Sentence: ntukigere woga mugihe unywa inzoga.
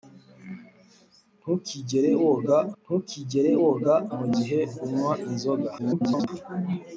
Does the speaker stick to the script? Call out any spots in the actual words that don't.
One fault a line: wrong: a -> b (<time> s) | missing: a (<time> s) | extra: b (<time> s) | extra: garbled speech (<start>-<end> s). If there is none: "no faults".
extra: ntukigere woga (2.8 s)
extra: garbled speech (5.8-6.3 s)